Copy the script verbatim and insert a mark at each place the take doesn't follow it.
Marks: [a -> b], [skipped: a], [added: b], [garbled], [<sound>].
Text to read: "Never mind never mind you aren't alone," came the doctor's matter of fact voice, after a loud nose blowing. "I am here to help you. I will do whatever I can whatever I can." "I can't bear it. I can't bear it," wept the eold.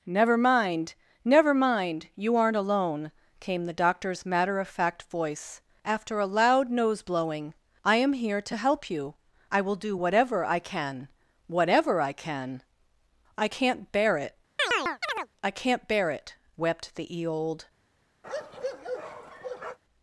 "Never mind never mind you aren't alone," came the doctor's matter of fact voice, after a loud nose blowing. "I am here to help you. I will do whatever I can whatever I can." "I can't bear it. [chirp] I can't bear it," wept the eold. [bark]